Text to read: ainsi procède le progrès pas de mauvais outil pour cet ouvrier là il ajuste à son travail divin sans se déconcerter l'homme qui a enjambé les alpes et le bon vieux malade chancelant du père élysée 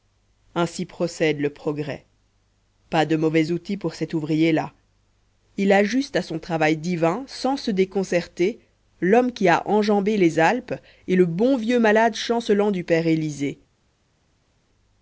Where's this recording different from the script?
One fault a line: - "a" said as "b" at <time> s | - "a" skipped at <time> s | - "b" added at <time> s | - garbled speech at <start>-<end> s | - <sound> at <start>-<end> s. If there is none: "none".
none